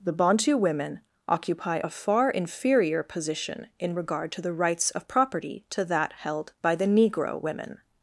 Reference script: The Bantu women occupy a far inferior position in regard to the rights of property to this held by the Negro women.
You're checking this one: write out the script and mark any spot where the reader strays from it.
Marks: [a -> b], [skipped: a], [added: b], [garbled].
The Bantu women occupy a far inferior position in regard to the rights of property to [this -> that] held by the Negro women.